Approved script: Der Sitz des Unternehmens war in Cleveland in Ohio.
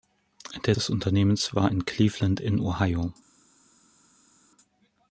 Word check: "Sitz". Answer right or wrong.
wrong